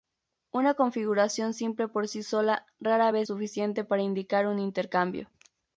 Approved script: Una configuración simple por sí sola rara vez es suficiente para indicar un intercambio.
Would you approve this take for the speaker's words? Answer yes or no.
no